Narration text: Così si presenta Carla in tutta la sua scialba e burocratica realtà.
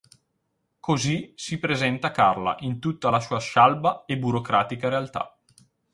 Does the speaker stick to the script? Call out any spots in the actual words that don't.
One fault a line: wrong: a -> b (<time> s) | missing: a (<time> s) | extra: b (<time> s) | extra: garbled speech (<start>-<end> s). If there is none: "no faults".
no faults